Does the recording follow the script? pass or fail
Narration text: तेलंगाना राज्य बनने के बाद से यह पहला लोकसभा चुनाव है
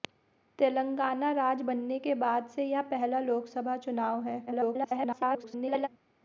fail